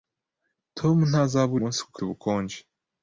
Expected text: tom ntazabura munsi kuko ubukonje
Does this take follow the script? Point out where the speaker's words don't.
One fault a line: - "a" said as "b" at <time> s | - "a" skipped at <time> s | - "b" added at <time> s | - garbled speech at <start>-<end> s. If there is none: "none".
none